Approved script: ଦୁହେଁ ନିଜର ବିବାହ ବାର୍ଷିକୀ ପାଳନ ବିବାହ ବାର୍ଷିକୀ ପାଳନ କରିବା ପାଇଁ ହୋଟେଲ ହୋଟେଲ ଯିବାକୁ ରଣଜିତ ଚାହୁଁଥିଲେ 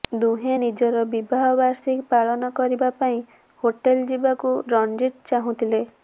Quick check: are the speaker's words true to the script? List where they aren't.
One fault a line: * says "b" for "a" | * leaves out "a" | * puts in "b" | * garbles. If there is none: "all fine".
* leaves out "ବିବାହ ବାର୍ଷିକୀ ପାଳନ"
* leaves out "ହୋଟେଲ"